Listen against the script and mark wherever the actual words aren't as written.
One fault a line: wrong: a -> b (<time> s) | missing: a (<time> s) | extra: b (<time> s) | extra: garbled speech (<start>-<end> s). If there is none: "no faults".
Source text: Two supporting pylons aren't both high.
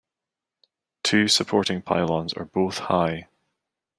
wrong: aren't -> are (2.3 s)